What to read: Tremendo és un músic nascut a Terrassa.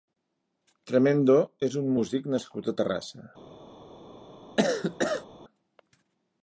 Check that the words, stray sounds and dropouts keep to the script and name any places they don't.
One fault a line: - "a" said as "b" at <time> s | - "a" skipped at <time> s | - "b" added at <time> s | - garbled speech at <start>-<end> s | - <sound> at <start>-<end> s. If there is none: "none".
- cough at 4.6-5.3 s